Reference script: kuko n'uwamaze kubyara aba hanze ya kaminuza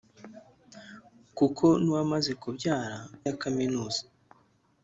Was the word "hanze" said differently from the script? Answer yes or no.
yes